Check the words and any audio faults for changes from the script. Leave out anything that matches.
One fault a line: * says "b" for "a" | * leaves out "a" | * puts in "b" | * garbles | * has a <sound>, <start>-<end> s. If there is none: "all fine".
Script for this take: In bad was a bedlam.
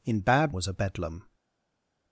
all fine